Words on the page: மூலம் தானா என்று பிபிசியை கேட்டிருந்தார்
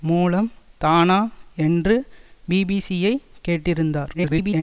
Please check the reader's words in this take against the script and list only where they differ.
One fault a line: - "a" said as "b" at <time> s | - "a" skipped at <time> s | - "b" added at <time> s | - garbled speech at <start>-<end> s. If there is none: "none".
- garbled speech at 4.1-4.6 s